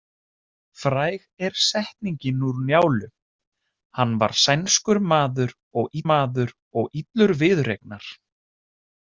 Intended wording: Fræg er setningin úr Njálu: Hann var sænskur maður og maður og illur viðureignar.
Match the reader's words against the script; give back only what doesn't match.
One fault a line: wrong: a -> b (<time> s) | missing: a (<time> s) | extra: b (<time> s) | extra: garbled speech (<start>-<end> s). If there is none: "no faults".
no faults